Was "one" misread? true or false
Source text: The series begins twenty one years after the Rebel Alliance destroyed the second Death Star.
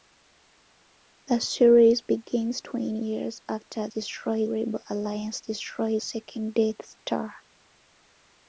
true